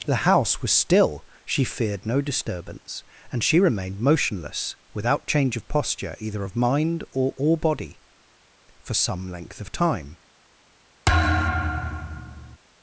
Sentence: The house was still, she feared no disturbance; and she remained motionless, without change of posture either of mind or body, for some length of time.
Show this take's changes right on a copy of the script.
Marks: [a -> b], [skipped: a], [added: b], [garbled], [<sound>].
The house was still, she feared no disturbance; and she remained motionless, without change of posture either of mind or [added: or] body, for some length of time. [thud]